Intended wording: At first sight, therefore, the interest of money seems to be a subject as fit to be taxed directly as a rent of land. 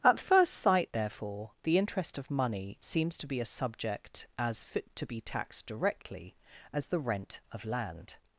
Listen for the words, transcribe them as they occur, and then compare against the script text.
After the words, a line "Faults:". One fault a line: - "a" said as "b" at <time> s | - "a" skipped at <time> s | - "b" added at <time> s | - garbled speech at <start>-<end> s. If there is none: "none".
At first sight, therefore, the interest of money seems to be a subject as fit to be taxed directly as the rent of land.
Faults:
- "a" said as "the" at 6.9 s